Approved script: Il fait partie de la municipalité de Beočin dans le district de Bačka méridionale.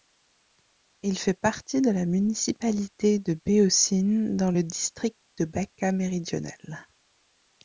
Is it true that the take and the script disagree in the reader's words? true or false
false